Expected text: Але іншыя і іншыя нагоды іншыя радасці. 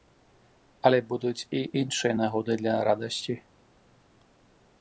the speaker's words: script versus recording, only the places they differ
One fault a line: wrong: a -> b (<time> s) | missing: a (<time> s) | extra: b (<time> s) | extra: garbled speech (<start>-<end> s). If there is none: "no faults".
wrong: іншыя -> будуць (1.1 s)
wrong: іншыя -> для (2.6 s)